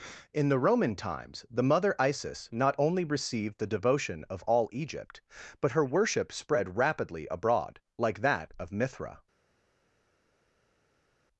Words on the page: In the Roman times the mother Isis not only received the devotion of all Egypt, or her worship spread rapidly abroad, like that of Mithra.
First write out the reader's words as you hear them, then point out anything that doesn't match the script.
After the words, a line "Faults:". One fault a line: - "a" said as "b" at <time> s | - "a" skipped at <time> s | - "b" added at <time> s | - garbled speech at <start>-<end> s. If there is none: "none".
In the Roman times the mother Isis not only received the devotion of all Egypt, but her worship spread rapidly abroad, like that of Mithra.
Faults:
- "or" said as "but" at 5.6 s